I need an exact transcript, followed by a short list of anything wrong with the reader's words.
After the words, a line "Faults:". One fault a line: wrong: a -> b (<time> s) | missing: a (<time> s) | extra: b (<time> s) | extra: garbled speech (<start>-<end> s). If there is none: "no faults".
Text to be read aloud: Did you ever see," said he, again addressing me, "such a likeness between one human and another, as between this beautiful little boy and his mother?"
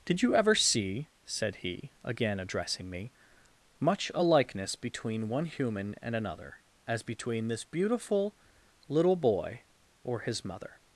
Did you ever see," said he, again addressing me, "much a likeness between one human and another, as between this beautiful little boy or his mother?"
Faults:
wrong: such -> much (3.8 s)
wrong: and -> or (10.0 s)